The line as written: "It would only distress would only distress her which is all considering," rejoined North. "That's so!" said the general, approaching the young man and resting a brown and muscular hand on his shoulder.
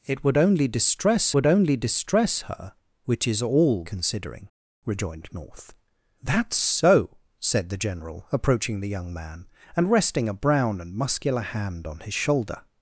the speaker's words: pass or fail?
pass